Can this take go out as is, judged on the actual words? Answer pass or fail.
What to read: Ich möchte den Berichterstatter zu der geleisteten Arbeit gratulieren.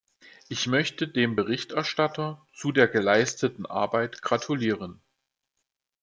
fail